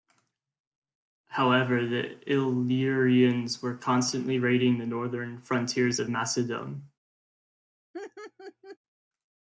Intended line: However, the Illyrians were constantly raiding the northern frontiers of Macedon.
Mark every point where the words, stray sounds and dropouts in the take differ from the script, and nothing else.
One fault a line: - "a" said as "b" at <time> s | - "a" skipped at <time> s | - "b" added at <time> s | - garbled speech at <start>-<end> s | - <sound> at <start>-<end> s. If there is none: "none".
- laugh at 7.9-8.8 s